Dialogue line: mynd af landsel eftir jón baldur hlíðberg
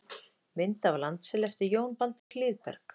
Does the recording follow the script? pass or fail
pass